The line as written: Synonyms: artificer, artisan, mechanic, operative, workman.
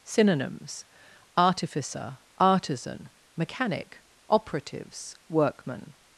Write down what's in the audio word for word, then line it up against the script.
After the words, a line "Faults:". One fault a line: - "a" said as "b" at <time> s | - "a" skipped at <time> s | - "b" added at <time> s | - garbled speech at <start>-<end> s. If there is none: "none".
Synonyms: artificer, artisan, mechanic, operatives, workman.
Faults:
- "operative" said as "operatives" at 4.3 s